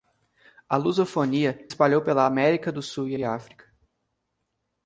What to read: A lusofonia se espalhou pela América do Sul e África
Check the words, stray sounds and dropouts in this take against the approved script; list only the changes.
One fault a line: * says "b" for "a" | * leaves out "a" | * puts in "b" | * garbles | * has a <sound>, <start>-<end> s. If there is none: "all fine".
* leaves out "se"
* puts in "e"